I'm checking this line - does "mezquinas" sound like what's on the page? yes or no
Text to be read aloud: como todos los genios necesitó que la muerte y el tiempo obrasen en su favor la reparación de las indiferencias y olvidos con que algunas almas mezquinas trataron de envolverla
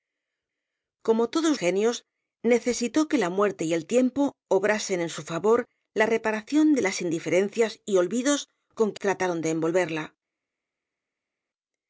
no